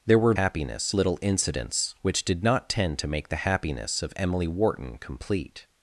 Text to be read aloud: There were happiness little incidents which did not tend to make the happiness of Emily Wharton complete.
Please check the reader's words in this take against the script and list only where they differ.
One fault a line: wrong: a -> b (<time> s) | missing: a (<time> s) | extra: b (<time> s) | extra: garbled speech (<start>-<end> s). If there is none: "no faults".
no faults